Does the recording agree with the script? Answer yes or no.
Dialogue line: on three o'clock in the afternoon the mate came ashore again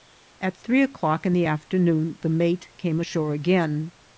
no